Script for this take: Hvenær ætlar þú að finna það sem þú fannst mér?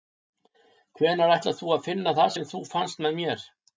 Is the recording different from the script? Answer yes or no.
yes